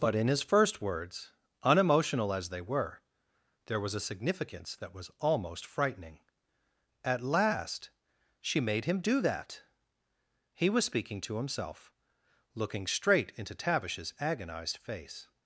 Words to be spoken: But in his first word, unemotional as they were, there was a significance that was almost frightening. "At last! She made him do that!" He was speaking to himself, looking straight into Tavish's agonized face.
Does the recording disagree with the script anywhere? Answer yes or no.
yes